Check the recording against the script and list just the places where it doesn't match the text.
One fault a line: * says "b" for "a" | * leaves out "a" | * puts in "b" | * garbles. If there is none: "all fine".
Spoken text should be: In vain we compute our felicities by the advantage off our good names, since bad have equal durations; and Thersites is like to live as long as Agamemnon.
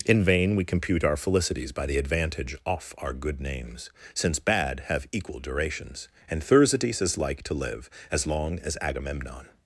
all fine